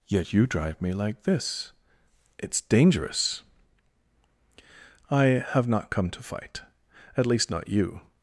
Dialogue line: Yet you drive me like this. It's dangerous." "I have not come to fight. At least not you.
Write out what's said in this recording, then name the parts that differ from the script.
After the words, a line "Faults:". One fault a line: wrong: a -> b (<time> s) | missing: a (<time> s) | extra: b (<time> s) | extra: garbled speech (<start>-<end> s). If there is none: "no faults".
Yet you drive me like this. It's dangerous." "I have not come to fight. At least not you.
Faults:
no faults